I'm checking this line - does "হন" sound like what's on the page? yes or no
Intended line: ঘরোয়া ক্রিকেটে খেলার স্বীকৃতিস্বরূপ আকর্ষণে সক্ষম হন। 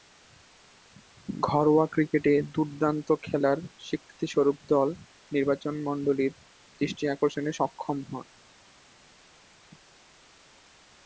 yes